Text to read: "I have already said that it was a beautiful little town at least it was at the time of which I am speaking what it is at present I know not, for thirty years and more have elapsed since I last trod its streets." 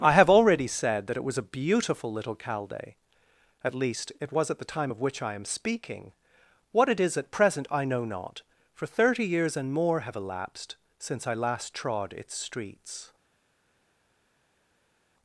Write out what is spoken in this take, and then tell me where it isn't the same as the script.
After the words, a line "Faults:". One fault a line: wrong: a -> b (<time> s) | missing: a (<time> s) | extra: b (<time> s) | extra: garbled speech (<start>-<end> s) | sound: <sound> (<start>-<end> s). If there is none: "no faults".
"I have already said that it was a beautiful little calde at least it was at the time of which I am speaking what it is at present I know not, for thirty years and more have elapsed since I last trod its streets."
Faults:
wrong: town -> calde (2.4 s)